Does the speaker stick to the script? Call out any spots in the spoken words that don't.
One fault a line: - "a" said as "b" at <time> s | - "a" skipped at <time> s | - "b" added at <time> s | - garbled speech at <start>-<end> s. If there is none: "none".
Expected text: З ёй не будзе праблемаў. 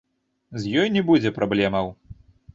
none